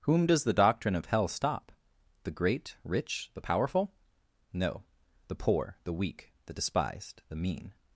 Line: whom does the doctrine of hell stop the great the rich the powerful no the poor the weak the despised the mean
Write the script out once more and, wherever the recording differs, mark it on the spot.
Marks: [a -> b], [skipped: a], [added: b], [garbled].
whom does the doctrine of hell stop the great [skipped: the] rich the powerful no the poor the weak the despised the mean